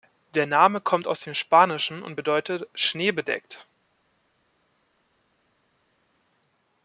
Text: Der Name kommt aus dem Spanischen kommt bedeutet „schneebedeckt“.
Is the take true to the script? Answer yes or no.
no